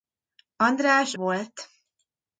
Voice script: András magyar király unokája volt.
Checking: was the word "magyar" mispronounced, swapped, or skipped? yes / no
yes